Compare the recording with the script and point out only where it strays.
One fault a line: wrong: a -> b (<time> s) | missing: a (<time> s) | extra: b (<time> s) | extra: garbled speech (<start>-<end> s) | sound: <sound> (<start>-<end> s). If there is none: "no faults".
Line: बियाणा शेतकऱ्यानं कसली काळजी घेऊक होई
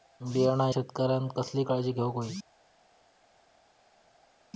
no faults